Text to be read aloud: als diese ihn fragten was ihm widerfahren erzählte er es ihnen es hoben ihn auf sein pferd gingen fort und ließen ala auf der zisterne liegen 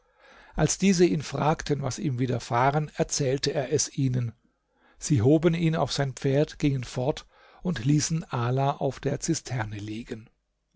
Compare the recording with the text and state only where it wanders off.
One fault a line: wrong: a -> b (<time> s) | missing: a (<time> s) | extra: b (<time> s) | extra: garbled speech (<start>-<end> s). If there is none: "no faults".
wrong: es -> sie (5.0 s)